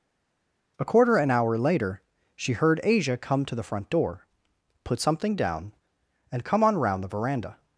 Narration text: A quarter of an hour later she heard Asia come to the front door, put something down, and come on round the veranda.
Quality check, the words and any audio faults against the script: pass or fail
fail